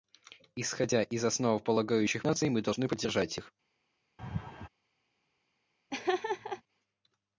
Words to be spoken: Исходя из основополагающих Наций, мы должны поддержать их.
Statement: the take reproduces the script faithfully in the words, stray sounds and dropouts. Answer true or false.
false